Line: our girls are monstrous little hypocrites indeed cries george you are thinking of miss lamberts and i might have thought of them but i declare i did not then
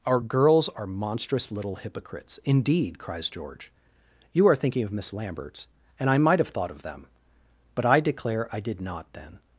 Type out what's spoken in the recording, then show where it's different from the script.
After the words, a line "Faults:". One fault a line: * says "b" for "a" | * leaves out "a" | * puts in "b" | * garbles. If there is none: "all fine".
our girls are monstrous little hypocrites indeed cries george you are thinking of miss lamberts and i might have thought of them but i declare i did not then
Faults:
all fine